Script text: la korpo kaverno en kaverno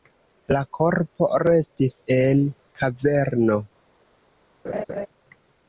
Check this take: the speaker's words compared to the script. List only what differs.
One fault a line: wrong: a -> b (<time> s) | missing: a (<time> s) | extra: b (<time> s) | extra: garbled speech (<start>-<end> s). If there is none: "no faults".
wrong: kaverno -> restis (1.4 s)